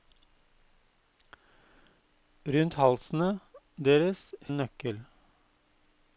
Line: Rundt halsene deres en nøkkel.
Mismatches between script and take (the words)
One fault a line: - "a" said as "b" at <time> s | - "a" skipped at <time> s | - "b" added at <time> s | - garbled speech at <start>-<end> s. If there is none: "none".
none